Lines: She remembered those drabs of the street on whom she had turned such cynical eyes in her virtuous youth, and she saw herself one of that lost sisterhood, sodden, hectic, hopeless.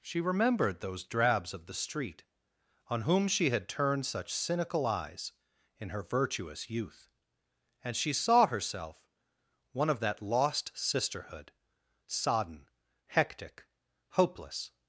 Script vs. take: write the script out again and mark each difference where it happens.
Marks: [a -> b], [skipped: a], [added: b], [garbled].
She remembered those drabs of the street on whom she had turned such cynical eyes in her virtuous youth, and she saw herself one of that lost sisterhood, sodden, hectic, hopeless.